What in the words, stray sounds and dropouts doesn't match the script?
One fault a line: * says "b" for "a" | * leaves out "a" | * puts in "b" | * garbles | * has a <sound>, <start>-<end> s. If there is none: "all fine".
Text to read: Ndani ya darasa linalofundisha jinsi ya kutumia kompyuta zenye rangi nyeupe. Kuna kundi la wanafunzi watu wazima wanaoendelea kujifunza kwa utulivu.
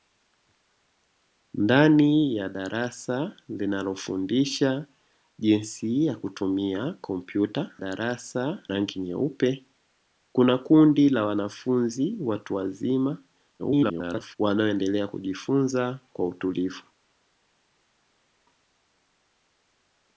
* says "darasa" for "zenye"
* garbles